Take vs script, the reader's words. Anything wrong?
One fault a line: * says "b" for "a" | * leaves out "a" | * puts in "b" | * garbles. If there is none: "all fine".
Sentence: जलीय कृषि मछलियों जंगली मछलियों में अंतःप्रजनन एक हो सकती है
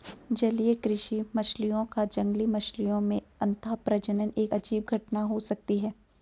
* puts in "का"
* puts in "अजीब घटना"